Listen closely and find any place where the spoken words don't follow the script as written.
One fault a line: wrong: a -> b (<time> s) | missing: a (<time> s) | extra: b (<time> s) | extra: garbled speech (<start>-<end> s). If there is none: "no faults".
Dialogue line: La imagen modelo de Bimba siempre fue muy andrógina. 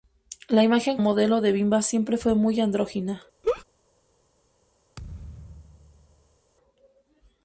no faults